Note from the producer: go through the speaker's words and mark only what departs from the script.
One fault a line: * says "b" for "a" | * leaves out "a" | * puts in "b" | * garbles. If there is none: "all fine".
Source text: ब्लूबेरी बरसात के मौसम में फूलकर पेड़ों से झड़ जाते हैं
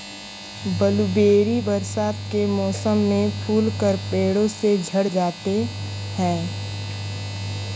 all fine